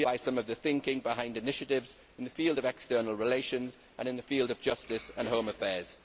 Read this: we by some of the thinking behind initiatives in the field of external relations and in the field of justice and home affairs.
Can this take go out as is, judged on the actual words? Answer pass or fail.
pass